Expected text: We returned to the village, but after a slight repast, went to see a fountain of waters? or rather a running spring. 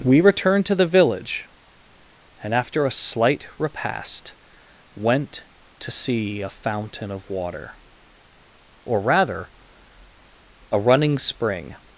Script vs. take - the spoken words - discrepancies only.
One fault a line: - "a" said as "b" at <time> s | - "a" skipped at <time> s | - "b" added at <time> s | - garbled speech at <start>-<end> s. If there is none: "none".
- "but" said as "and" at 2.4 s
- "waters" said as "water" at 7.3 s